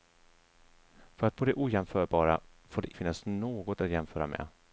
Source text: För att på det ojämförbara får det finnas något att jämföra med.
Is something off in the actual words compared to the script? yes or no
no